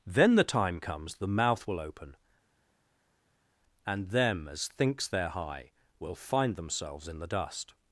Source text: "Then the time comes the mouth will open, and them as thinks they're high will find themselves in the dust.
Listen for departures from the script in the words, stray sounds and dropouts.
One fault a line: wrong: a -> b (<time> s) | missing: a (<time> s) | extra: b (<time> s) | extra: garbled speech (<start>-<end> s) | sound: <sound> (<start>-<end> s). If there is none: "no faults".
no faults